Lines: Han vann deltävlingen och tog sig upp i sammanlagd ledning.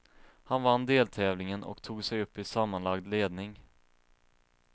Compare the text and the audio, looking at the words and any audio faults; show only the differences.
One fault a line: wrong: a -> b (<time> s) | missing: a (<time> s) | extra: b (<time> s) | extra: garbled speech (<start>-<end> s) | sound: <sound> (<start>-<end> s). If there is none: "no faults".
no faults